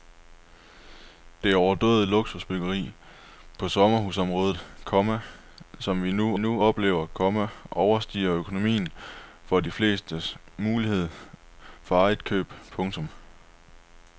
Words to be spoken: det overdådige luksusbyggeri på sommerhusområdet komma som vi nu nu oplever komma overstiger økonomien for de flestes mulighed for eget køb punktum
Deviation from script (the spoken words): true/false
false